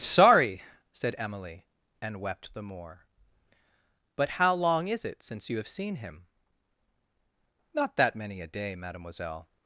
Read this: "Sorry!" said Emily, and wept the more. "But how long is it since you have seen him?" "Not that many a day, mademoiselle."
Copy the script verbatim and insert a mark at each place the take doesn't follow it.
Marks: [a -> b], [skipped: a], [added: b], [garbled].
"Sorry!" said Emily, and wept the more. "But how long is it since you have seen him?" "Not that many a day, mademoiselle."